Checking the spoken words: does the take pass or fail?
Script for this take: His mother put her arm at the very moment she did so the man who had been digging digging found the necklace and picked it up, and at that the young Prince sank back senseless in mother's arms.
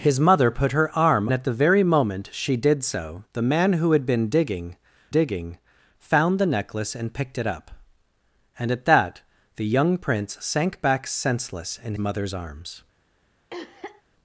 pass